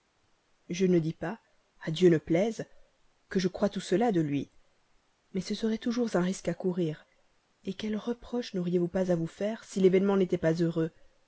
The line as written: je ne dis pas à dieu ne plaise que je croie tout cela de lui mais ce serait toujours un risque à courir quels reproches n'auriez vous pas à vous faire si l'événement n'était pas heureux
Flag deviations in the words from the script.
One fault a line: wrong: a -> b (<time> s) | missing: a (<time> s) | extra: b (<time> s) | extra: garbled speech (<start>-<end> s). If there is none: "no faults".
no faults